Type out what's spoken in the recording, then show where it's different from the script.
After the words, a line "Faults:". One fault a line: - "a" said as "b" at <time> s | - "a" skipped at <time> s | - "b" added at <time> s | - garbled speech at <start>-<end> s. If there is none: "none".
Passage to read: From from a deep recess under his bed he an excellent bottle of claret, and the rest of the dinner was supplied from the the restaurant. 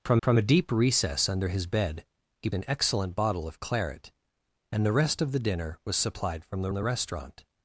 From from a deep recess under his bed he an excellent bottle of claret, and the rest of the dinner was supplied from the the restaurant.
Faults:
none